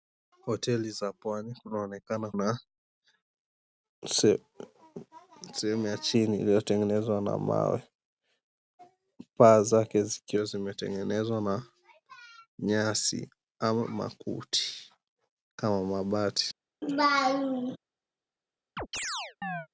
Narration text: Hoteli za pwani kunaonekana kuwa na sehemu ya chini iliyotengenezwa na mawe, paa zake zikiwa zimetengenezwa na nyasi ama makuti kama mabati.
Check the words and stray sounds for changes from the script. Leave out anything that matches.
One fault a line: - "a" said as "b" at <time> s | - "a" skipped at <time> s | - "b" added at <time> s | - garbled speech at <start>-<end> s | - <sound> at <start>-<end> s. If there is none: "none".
- "kuwa" skipped at 2.3 s
- laugh at 16.8-17.8 s
- chirp at 18.8-19.7 s